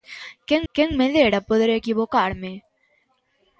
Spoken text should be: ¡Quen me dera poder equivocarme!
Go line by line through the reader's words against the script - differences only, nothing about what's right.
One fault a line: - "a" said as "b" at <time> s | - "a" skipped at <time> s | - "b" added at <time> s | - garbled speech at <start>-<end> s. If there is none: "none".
- "quen" added at 0.7 s